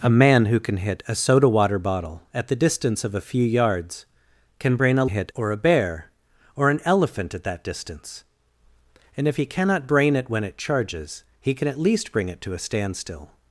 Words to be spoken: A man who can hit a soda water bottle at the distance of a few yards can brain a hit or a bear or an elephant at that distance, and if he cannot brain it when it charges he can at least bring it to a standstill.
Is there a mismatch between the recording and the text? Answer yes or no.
no